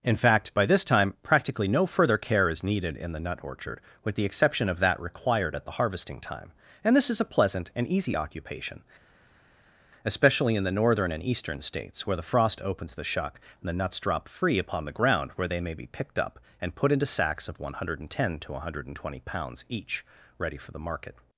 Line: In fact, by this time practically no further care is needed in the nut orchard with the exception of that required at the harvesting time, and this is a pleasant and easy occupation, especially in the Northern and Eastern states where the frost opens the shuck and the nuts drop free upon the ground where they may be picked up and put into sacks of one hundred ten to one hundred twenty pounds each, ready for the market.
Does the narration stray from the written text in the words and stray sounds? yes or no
no